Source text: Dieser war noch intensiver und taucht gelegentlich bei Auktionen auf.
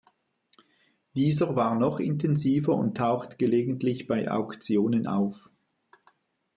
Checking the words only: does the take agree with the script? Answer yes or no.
yes